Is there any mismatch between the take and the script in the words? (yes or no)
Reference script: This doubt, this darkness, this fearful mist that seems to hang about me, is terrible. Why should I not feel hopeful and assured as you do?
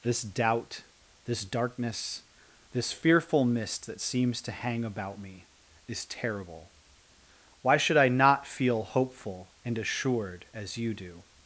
no